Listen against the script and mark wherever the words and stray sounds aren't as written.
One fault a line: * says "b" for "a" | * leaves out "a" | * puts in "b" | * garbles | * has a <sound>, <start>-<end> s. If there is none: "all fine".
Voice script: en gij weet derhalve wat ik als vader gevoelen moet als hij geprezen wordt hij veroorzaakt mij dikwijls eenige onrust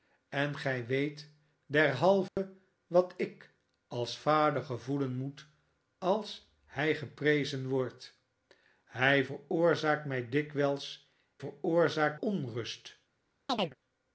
* has a dropout, 2.3-2.4 s
* says "veroorzaakt" for "eenige"
* has a chirp, 13.5-13.8 s